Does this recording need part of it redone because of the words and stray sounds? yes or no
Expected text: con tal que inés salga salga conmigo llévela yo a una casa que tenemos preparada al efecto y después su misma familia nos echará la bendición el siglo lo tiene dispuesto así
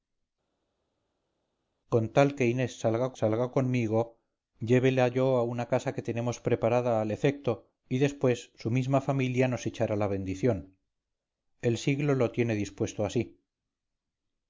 no